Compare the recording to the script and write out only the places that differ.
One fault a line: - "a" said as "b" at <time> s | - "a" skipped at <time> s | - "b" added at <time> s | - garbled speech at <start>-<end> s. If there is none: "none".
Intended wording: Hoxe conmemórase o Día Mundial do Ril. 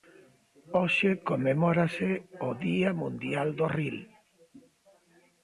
none